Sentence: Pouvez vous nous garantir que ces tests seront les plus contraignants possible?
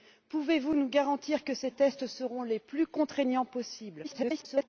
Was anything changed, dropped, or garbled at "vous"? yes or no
no